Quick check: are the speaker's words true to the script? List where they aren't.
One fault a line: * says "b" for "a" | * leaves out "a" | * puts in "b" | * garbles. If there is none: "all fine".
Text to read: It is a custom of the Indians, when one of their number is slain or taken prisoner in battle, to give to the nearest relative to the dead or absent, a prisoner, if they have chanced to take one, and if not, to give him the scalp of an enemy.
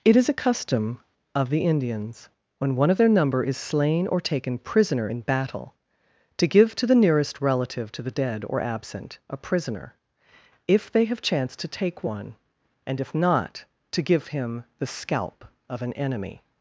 all fine